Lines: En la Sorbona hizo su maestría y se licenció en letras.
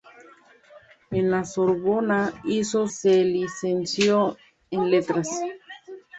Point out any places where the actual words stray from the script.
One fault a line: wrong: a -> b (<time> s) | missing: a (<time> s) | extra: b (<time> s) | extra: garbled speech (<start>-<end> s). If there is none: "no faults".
missing: su maestría y (2.9 s)